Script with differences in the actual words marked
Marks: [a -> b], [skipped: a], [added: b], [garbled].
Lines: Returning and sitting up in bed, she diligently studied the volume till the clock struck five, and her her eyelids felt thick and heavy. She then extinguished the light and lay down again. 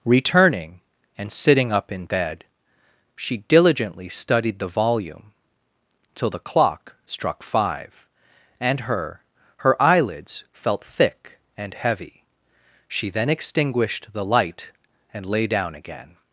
Returning and sitting up in bed, she diligently studied the volume till the clock struck five, and her her eyelids felt thick and heavy. She then extinguished the light and lay down again.